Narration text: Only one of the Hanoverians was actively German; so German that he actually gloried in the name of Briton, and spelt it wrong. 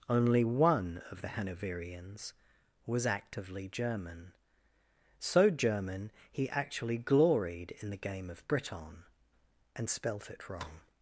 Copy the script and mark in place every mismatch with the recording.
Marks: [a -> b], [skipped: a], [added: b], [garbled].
Only one of the Hanoverians was actively German; so German [skipped: that] he actually gloried in the [name -> game] of Briton, and spelt it wrong.